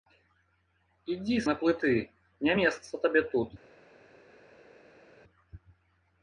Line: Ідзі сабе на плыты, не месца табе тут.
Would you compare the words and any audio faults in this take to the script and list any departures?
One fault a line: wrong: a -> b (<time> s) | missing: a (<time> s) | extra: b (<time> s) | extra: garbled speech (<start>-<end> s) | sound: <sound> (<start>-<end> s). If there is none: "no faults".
missing: сабе (1.4 s)